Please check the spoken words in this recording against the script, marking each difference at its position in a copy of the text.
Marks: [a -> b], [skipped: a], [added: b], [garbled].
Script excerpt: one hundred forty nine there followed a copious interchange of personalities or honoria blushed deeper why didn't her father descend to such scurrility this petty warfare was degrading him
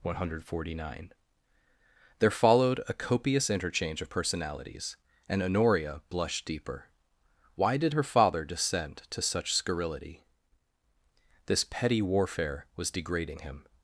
one hundred forty nine there followed a copious interchange of personalities [or -> and] honoria blushed deeper why [didn't -> did] her father descend to such scurrility this petty warfare was degrading him